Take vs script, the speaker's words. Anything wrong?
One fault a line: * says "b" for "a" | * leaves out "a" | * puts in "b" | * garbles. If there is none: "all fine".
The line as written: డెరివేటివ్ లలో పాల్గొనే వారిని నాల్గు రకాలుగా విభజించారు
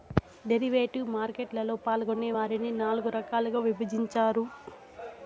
* puts in "మార్కెట్"